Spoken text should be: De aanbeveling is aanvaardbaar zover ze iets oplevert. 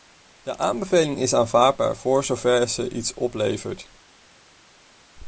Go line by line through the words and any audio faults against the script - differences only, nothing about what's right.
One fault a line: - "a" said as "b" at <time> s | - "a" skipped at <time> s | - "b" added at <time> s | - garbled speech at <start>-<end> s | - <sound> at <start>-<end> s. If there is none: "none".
- "voor" added at 2.0 s